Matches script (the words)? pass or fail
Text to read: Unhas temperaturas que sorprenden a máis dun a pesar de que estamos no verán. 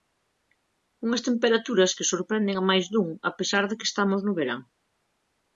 pass